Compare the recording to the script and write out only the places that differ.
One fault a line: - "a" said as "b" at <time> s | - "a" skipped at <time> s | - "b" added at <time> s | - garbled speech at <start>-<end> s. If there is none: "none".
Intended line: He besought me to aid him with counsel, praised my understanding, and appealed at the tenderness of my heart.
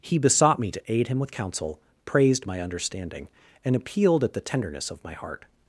none